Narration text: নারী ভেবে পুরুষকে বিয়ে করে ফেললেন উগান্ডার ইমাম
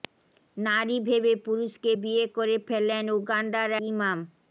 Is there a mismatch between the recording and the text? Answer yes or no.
no